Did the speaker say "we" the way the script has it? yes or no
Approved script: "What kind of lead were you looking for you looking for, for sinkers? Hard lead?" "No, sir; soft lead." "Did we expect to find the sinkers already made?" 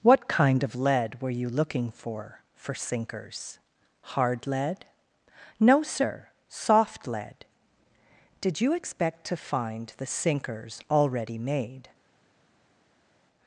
no